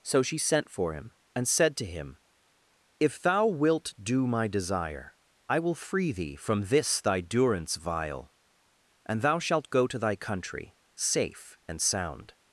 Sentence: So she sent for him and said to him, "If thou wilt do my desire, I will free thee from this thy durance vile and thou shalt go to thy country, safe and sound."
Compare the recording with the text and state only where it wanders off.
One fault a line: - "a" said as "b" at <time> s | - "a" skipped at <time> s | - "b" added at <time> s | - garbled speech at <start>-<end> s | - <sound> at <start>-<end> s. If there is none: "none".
none